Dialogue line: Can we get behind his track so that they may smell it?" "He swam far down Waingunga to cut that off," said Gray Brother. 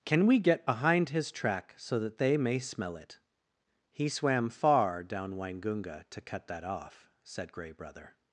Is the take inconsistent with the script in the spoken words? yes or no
no